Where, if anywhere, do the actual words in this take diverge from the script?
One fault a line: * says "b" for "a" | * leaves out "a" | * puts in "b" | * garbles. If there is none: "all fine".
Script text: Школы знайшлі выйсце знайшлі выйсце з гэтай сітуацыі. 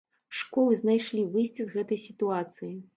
* leaves out "знайшлі выйсце"